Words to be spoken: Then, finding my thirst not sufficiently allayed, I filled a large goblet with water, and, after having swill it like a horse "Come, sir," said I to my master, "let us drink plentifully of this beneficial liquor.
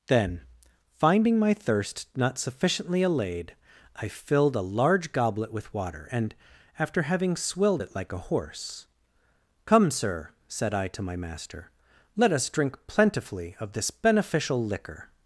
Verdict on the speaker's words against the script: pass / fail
fail